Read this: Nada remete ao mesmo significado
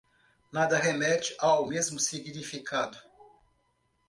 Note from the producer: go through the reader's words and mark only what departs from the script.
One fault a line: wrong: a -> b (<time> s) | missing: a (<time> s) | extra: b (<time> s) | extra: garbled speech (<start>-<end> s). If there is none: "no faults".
no faults